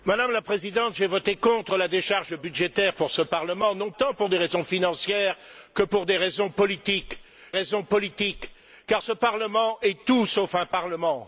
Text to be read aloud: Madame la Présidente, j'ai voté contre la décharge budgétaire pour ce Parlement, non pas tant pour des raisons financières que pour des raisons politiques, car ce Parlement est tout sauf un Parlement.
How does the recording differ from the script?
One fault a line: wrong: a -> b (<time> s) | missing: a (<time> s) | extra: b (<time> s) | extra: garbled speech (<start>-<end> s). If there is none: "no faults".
missing: pas (3.9 s)
extra: raisons politiques (7.5 s)